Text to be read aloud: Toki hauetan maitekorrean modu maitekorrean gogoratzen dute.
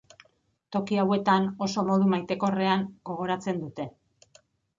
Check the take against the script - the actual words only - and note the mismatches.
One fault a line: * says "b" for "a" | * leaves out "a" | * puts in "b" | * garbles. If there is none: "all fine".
* says "oso" for "maitekorrean"